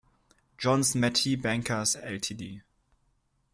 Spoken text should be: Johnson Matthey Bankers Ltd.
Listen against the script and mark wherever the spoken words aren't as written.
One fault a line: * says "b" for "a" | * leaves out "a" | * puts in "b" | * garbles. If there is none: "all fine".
all fine